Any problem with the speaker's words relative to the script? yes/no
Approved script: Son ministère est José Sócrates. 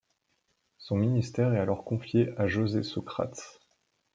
yes